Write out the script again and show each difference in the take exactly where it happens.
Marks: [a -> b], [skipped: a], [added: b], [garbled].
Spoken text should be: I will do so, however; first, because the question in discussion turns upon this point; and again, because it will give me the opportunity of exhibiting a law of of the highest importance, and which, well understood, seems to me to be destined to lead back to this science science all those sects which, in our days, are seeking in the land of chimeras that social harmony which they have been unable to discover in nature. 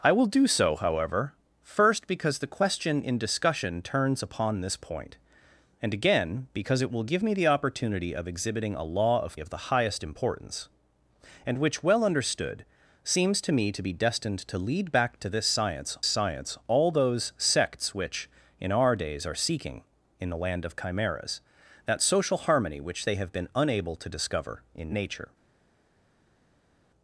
I will do so, however; first, because the question in discussion turns upon this point; and again, because it will give me the opportunity of exhibiting a law of of the highest importance, and which, well understood, seems to me to be destined to lead back to this science science all those sects which, in our days, are seeking in the land of chimeras that social harmony which they have been unable to discover in nature.